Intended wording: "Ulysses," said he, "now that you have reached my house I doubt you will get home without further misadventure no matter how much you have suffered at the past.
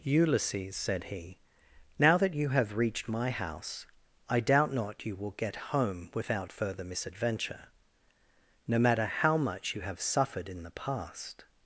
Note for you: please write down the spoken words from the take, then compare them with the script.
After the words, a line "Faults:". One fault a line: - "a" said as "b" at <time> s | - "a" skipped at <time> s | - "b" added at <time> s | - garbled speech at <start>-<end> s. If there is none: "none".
"Ulysses," said he, "now that you have reached my house I doubt not you will get home without further misadventure no matter how much you have suffered in the past.
Faults:
- "not" added at 4.7 s
- "at" said as "in" at 10.5 s